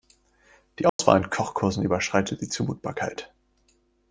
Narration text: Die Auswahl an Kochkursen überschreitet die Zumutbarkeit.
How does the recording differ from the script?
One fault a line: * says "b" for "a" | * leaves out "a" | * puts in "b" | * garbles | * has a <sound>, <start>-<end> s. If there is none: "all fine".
* has a dropout, 0.9-1.0 s